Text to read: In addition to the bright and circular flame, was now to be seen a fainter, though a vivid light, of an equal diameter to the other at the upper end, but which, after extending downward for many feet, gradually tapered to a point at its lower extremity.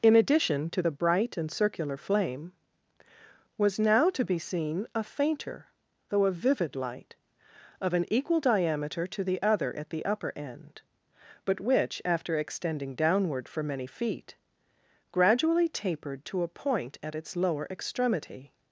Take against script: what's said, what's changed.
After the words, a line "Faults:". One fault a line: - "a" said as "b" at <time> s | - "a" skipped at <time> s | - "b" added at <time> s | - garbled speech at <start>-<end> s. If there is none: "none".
In addition to the bright and circular flame, was now to be seen a fainter, though a vivid light, of an equal diameter to the other at the upper end, but which, after extending downward for many feet, gradually tapered to a point at its lower extremity.
Faults:
none